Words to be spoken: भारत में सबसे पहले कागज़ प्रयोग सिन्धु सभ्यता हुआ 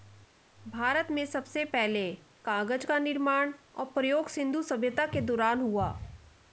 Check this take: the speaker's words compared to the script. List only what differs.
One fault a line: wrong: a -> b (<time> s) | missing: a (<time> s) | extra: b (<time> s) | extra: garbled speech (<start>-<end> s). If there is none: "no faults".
extra: का निर्माण और (2.9 s)
extra: के दौरान (5.1 s)